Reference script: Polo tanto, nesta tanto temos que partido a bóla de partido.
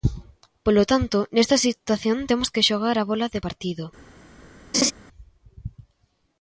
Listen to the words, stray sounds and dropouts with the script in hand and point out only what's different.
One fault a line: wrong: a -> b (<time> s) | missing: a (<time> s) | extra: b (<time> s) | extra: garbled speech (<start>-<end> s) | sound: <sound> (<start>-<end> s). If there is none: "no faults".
wrong: tanto -> situación (1.7 s)
wrong: partido -> xogar (2.7 s)
sound: laugh (4.7-4.9 s)